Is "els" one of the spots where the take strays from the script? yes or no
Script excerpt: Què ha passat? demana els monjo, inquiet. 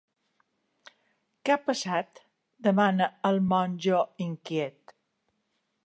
yes